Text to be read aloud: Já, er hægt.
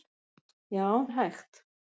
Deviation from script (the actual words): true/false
false